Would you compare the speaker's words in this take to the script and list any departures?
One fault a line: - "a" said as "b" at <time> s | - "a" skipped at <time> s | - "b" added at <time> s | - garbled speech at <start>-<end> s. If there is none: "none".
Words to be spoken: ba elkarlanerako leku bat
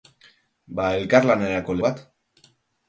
- "leku" skipped at 1.8 s